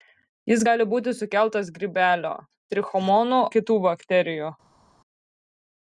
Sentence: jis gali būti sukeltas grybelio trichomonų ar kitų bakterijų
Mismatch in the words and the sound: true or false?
true